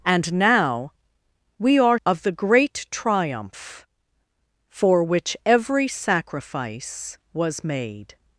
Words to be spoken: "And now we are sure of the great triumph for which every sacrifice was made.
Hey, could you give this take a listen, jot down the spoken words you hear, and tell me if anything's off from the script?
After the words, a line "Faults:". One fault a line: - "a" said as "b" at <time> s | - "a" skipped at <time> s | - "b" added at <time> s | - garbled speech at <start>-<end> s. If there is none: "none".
"And now we are of the great triumph for which every sacrifice was made.
Faults:
- "sure" skipped at 2.0 s